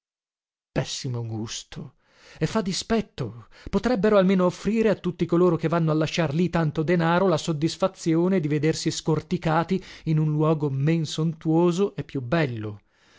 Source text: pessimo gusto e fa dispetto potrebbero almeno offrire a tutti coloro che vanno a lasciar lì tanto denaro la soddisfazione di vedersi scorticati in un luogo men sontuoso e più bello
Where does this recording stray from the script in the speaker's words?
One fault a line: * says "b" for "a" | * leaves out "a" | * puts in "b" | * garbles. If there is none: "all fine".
all fine